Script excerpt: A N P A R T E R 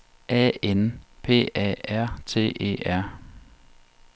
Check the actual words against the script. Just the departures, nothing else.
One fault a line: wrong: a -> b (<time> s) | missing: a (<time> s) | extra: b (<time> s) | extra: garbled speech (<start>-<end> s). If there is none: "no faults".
no faults